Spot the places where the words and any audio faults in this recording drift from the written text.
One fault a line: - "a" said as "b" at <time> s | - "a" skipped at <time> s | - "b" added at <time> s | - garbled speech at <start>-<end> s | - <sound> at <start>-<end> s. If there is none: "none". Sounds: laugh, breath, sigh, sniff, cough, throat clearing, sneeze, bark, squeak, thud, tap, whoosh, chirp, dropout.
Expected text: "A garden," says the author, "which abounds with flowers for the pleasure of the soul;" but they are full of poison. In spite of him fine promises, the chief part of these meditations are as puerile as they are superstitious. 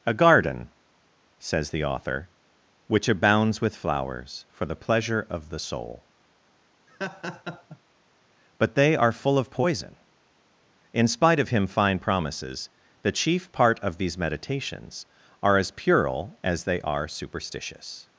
- laugh at 6.9-7.8 s